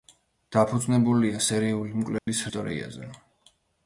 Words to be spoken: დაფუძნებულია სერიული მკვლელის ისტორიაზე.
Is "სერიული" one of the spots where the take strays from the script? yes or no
no